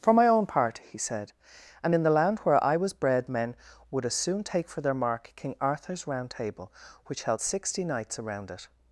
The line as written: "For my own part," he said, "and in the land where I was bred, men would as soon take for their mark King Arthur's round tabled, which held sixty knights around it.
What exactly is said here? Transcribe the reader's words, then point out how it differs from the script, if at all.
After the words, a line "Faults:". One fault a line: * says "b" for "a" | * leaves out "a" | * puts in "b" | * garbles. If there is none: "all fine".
"For my own part," he said, "and in the land where I was bred, men would as soon take for their mark King Arthur's round table, which held sixty knights around it.
Faults:
* says "table" for "tabled"